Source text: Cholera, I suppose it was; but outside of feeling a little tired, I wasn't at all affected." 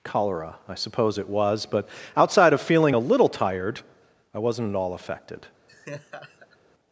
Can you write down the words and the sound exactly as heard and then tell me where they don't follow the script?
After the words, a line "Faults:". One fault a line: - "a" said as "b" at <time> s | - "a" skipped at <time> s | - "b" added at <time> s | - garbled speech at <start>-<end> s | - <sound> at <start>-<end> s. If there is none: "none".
Cholera, I suppose it was; but outside of feeling a little tired, I wasn't at all affected."
Faults:
- laugh at 5.7-6.6 s